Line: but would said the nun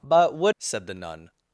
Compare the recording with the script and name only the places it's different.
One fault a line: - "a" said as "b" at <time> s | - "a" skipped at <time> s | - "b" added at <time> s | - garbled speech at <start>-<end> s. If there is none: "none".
none